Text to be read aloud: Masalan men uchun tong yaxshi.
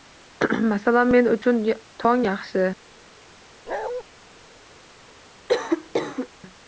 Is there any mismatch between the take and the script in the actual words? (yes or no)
no